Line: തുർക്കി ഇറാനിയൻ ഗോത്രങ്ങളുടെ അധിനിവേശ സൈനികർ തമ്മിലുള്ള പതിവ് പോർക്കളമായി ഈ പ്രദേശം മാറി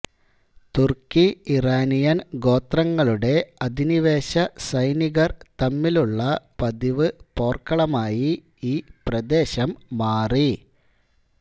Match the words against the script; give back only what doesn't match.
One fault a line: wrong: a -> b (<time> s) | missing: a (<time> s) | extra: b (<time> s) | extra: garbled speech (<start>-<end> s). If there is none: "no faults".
no faults